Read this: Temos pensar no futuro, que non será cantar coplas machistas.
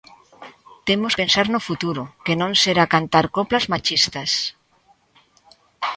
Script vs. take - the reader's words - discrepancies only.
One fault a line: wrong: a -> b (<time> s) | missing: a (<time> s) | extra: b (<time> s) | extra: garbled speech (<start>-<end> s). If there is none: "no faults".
no faults